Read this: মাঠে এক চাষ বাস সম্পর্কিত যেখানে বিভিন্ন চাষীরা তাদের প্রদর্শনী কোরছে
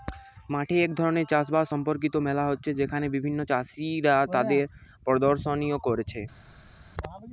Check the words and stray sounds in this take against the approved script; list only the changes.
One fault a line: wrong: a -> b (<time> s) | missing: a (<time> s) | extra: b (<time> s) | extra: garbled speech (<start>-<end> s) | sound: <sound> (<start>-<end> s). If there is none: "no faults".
extra: ধরণের (1.0 s)
extra: মেলা হচ্ছে (2.3 s)